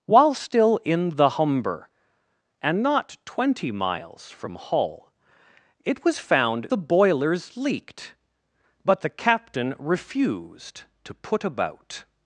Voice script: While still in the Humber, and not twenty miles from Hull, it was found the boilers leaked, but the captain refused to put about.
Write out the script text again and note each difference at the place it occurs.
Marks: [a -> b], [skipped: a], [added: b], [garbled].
While still in the Humber, and not twenty miles from Hull, it was found the boilers leaked, but the captain refused to put about.